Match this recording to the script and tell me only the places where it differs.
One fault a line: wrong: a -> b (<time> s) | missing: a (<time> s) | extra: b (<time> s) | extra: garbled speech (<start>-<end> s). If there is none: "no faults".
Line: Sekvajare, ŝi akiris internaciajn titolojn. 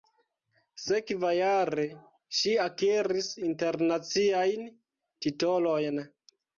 no faults